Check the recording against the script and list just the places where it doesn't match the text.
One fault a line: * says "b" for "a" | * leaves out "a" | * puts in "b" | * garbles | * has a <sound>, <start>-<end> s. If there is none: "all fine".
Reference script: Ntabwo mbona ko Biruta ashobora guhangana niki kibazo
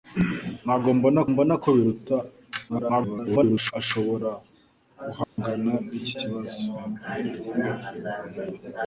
* puts in "mbona"
* garbles
* has a dropout, 5.2-5.4 s